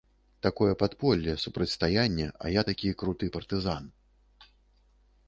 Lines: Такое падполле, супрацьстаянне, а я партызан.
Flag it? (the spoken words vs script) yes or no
yes